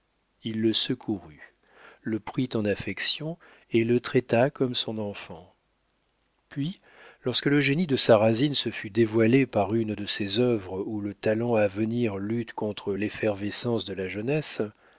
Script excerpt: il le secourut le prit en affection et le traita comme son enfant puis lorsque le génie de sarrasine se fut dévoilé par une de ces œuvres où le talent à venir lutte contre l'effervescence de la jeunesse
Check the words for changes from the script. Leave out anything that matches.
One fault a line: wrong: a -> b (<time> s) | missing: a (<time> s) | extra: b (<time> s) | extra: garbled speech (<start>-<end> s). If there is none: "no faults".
no faults